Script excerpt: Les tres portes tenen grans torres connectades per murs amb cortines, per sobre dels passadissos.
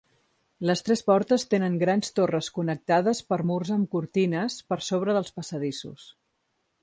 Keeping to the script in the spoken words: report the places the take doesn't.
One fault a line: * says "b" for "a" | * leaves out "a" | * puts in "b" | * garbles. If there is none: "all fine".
all fine